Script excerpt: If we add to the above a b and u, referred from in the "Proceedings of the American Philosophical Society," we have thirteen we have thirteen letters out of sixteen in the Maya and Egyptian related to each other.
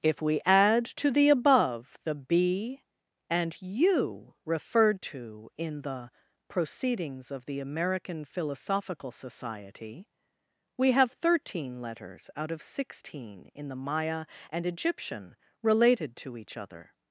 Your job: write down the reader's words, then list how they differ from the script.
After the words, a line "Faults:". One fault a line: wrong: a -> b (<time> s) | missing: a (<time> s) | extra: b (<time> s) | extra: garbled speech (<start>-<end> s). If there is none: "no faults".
If we add to the above the b and u, referred to in the "Proceedings of the American Philosophical Society," we have thirteen letters out of sixteen in the Maya and Egyptian related to each other.
Faults:
wrong: a -> the (2.0 s)
wrong: from -> to (5.0 s)
missing: we have thirteen (11.8 s)